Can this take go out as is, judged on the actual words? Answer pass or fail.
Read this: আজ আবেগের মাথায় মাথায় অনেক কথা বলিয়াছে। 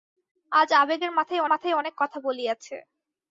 pass